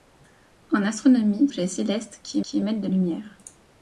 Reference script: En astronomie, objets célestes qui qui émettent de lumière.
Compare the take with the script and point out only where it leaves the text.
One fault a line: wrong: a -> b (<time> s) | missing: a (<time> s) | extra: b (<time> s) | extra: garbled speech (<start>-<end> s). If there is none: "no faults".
no faults